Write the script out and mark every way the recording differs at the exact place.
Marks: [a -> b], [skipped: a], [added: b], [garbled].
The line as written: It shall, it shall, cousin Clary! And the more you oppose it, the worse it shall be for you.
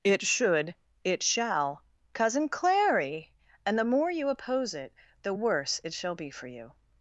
It [shall, -> should] it shall, cousin Clary! And the more you oppose it, the worse it shall be for you.